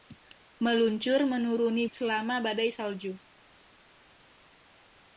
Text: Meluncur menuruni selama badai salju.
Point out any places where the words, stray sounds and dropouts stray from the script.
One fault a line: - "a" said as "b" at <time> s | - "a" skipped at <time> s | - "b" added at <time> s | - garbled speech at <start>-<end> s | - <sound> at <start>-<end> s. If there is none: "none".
none